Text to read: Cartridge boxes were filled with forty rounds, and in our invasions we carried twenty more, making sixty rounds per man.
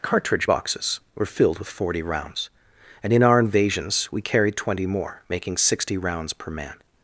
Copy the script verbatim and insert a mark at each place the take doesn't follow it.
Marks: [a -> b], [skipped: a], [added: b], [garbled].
Cartridge boxes were filled with forty rounds, and in our invasions we carried twenty more, making sixty rounds per man.